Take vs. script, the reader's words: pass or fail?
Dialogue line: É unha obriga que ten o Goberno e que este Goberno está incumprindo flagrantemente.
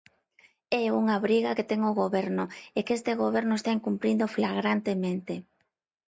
pass